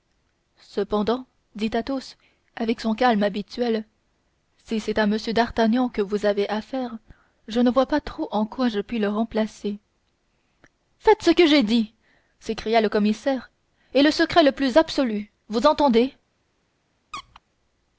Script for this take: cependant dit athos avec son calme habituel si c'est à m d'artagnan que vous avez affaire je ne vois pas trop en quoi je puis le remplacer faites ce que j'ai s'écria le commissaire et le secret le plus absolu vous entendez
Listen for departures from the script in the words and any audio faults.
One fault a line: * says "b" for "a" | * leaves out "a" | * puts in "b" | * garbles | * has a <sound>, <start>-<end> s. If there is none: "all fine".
* puts in "dit"
* has a squeak, 17.1-17.4 s